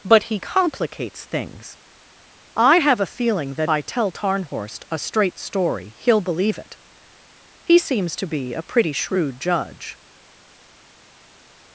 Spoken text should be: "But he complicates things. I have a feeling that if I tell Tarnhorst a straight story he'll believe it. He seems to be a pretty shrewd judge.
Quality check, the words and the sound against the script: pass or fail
fail